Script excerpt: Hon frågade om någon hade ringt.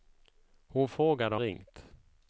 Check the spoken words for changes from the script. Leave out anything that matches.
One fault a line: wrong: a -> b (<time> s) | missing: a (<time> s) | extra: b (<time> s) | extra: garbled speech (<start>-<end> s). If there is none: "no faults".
missing: om någon hade (1.4 s)